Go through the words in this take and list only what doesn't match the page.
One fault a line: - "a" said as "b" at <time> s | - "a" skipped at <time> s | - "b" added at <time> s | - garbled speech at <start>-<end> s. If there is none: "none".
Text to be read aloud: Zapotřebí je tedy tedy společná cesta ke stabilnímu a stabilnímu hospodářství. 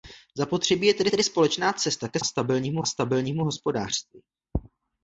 none